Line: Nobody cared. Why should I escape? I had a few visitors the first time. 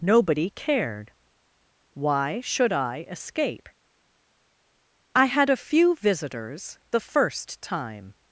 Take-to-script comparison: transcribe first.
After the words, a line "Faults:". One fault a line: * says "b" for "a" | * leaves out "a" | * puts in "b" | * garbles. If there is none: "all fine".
Nobody cared. Why should I escape? I had a few visitors the first time.
Faults:
all fine